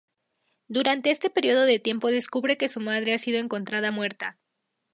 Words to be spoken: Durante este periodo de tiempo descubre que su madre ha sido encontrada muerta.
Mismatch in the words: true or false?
false